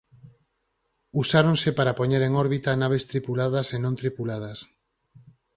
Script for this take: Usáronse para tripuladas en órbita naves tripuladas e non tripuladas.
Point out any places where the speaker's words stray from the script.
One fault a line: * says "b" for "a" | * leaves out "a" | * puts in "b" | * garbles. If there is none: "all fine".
* says "poñer" for "tripuladas"